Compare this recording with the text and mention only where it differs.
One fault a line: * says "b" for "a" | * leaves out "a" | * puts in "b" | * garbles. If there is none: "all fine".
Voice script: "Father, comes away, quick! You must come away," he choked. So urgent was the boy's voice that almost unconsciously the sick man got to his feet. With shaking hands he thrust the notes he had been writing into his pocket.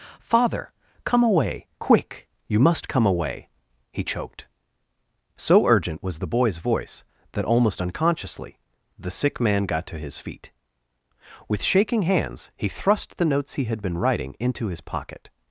* says "come" for "comes"